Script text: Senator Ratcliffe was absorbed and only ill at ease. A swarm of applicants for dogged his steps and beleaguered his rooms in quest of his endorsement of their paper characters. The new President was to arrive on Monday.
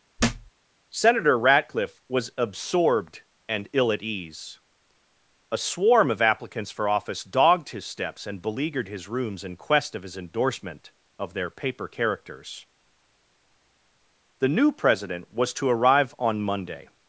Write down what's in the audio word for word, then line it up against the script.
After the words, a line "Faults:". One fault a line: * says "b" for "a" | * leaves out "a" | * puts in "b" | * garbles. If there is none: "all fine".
Senator Ratcliffe was absorbed and ill at ease. A swarm of applicants for office dogged his steps and beleaguered his rooms in quest of his endorsement of their paper characters. The new President was to arrive on Monday.
Faults:
* leaves out "only"
* puts in "office"